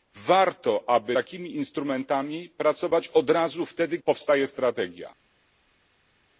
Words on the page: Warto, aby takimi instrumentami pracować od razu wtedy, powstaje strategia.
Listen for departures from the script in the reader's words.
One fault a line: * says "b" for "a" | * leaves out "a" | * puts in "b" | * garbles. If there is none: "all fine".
all fine